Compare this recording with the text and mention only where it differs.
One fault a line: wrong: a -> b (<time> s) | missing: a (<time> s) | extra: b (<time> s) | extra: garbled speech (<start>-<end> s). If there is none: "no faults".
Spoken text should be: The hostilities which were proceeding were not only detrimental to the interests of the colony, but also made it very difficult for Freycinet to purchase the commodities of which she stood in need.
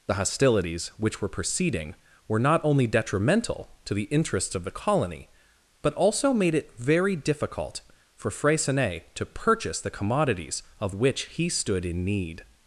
wrong: she -> he (11.3 s)